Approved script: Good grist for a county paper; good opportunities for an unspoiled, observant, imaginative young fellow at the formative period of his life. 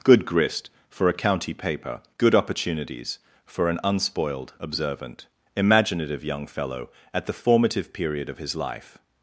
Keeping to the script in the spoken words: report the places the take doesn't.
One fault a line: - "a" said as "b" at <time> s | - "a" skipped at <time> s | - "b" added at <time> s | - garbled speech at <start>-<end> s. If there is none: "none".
none